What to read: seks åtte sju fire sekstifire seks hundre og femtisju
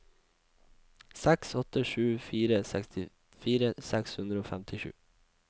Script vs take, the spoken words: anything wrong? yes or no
no